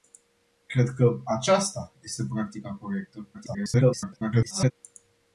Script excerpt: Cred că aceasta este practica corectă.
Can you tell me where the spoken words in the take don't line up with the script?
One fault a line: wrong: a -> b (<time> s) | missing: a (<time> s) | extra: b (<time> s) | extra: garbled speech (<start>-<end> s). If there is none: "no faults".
extra: garbled speech (3.3-4.7 s)